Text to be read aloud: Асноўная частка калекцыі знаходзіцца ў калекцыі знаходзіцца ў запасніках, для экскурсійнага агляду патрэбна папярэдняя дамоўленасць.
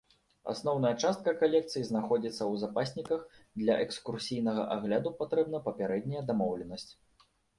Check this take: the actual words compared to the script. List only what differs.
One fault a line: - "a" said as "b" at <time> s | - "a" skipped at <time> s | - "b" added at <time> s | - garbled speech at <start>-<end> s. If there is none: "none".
- "калекцыі знаходзіцца ў" skipped at 2.5 s